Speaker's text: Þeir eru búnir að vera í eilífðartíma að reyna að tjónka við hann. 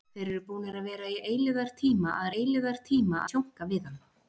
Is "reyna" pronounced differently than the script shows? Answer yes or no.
yes